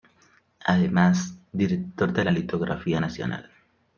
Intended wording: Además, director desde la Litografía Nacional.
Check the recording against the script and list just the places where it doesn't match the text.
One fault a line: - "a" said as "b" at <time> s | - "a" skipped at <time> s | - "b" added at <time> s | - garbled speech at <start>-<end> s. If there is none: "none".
- "desde" said as "de" at 2.1 s